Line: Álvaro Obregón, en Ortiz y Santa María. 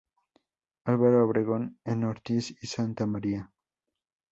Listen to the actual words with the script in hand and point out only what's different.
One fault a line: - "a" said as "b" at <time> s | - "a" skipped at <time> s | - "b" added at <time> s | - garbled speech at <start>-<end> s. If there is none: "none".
none